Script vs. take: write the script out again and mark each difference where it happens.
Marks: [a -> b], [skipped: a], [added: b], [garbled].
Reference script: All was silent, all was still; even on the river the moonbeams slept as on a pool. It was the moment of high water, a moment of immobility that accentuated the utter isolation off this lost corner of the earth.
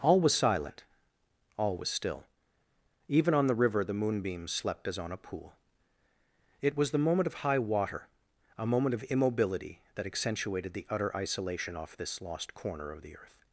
All was silent, all was still; even on the river the moonbeams slept as on a pool. It was the moment of high water, a moment of immobility that accentuated the utter isolation off this lost corner of the earth.